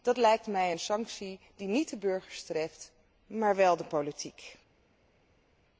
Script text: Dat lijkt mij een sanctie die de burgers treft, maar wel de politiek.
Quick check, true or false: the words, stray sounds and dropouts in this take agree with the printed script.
false